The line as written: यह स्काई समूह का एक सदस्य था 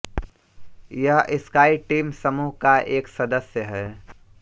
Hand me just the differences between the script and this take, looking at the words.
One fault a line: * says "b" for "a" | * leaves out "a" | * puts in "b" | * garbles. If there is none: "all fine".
* puts in "टीम"
* says "है" for "था"